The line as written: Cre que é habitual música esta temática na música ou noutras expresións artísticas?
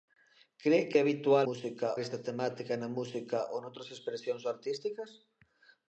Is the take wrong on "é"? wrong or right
right